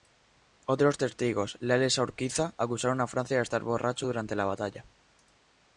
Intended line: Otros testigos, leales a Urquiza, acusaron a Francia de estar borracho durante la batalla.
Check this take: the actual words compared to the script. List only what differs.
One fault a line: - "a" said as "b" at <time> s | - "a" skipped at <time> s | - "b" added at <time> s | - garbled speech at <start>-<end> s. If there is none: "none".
none